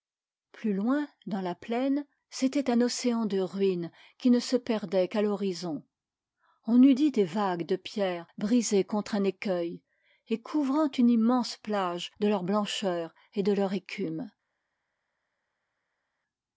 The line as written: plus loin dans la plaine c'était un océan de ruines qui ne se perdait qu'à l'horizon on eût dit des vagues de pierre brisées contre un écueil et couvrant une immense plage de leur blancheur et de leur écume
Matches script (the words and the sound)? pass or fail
pass